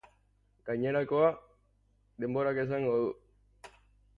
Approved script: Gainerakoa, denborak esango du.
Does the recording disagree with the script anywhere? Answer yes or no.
no